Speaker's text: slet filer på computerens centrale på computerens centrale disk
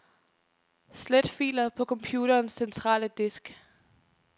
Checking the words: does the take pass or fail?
fail